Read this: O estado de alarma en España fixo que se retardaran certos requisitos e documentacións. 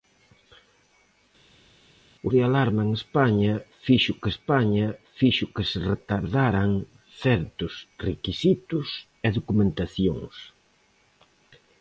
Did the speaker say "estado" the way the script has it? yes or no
no